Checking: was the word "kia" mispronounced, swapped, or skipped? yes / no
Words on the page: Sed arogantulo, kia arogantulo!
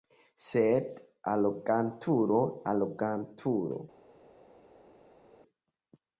yes